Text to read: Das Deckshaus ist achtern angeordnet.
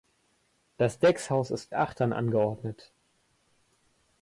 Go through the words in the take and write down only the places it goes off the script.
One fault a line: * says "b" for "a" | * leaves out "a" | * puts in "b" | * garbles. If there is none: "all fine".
all fine